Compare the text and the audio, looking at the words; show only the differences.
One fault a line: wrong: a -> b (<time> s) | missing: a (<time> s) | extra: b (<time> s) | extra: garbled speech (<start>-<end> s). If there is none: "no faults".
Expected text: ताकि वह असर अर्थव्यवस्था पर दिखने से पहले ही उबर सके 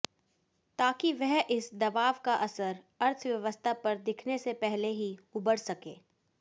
extra: इस दबाव का (1.5 s)